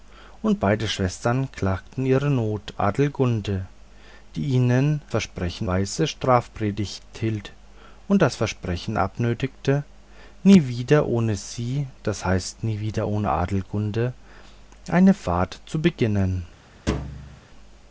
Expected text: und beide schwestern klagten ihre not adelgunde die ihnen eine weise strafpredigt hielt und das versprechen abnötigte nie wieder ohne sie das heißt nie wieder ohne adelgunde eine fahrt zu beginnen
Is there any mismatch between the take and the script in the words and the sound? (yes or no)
yes